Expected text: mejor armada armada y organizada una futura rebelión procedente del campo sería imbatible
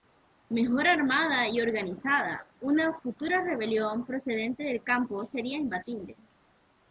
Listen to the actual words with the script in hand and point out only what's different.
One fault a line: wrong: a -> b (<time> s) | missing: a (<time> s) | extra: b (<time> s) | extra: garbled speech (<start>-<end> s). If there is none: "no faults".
missing: armada (1.5 s)